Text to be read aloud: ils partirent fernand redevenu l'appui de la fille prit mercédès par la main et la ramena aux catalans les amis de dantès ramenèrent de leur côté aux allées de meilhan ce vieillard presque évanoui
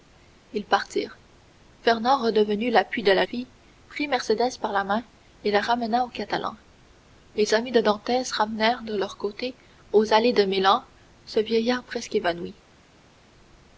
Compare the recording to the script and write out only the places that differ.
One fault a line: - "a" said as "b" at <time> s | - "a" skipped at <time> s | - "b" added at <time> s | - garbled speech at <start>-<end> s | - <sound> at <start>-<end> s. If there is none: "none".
none